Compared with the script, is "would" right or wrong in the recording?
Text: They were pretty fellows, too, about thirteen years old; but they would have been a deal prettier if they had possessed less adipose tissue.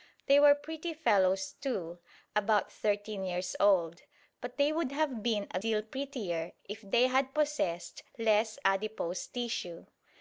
right